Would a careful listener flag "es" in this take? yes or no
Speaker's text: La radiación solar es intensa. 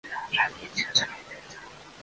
yes